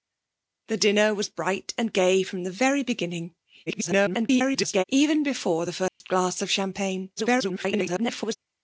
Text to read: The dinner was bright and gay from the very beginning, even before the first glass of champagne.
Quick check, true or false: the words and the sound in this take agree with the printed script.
false